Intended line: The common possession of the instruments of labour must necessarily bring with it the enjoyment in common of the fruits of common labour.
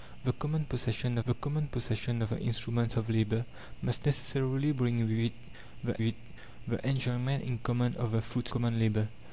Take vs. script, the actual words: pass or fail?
fail